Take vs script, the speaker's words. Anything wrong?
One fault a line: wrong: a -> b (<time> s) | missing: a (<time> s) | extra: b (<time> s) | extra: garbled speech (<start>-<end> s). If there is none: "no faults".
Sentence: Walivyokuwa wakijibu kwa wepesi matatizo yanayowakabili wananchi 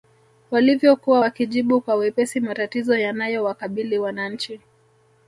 no faults